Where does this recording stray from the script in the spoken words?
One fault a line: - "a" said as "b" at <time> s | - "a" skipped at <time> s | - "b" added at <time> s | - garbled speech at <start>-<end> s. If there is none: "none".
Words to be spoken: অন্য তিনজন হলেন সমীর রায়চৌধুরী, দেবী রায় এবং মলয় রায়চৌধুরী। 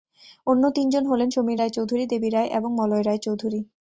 none